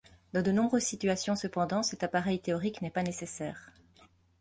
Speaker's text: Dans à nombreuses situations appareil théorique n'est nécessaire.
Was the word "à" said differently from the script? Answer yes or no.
yes